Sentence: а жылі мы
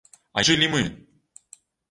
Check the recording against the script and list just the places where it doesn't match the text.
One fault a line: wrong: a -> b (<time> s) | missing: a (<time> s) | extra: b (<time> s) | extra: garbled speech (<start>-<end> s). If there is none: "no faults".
no faults